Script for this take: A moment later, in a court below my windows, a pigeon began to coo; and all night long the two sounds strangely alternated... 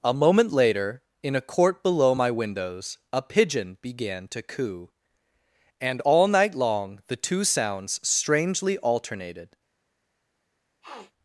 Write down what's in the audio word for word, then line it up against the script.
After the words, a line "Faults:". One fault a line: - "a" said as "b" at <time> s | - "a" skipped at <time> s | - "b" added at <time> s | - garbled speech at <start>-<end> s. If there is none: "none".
A moment later, in a court below my windows, a pigeon began to coo; and all night long the two sounds strangely alternated...
Faults:
none